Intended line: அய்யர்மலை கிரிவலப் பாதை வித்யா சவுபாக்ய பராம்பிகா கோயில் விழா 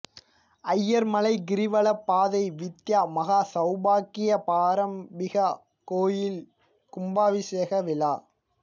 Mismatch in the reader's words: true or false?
true